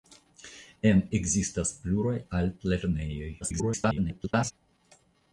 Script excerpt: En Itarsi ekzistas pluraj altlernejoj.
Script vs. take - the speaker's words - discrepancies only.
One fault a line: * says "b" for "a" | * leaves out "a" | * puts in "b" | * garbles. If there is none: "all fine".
* leaves out "Itarsi"
* garbles